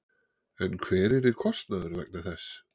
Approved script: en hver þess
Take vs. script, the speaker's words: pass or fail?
fail